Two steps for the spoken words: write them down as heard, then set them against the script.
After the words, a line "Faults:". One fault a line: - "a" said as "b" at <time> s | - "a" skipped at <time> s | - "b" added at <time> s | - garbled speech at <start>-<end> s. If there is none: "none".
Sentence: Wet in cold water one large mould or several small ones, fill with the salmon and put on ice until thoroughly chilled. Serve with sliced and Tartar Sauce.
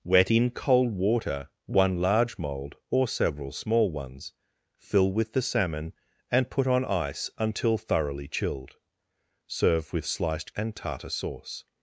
Wet in cold water one large mould or several small ones, fill with the salmon and put on ice until thoroughly chilled. Serve with sliced and Tartar Sauce.
Faults:
none